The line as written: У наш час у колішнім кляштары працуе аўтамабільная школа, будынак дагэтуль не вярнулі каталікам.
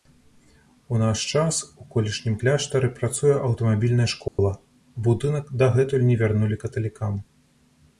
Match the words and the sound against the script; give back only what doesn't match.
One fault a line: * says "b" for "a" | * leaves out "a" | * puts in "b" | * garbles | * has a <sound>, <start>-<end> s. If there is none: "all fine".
* has a dropout, 4.3-4.4 s